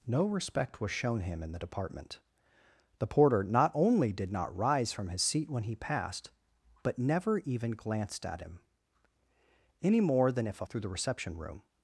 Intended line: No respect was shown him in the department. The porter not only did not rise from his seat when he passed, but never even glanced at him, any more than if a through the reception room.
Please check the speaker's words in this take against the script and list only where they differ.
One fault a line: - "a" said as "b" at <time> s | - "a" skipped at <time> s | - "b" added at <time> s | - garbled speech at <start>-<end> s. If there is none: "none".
none